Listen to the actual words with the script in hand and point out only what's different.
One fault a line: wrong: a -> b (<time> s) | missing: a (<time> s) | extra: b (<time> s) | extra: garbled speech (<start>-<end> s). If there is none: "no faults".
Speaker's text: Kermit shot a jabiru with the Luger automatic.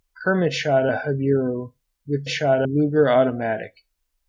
wrong: the -> shot (2.3 s)